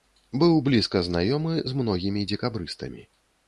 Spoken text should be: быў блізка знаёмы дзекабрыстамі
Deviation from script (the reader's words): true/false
true